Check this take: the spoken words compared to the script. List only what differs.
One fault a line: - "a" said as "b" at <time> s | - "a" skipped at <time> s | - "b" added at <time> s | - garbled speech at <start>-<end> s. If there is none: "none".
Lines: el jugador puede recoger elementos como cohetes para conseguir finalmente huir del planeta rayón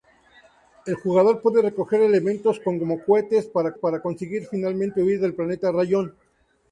- "para" added at 3.7 s